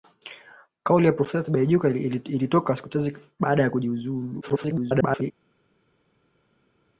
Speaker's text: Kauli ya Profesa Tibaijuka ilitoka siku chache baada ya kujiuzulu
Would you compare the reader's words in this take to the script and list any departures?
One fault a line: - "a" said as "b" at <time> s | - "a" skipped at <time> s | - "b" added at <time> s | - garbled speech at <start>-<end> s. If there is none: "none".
- garbled speech at 4.4-5.3 s